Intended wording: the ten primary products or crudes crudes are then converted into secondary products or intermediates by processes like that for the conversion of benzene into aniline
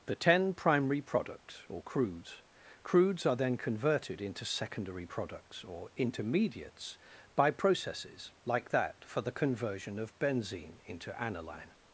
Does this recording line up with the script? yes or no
yes